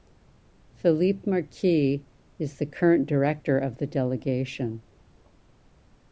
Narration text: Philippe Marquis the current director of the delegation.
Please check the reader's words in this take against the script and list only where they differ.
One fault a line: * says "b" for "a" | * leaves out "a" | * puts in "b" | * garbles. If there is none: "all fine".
* puts in "is"